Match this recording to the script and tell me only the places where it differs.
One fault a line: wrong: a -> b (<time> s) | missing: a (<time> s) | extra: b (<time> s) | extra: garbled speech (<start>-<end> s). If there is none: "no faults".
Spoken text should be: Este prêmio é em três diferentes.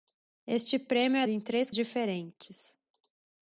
no faults